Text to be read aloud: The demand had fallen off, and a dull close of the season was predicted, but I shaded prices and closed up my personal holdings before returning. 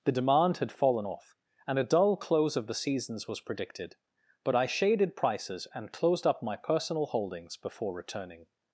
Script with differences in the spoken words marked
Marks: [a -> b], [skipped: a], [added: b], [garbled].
The demand had fallen off, and a dull close of the [season -> seasons] was predicted, but I shaded prices and closed up my personal holdings before returning.